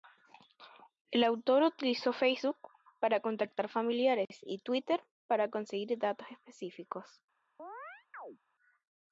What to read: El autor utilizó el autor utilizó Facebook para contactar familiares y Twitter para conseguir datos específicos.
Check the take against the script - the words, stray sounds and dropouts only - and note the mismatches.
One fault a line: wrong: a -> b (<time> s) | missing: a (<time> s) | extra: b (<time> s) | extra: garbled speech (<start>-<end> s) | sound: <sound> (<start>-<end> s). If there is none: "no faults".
missing: el autor utilizó (2.1 s)
sound: chirp (7.6-8.4 s)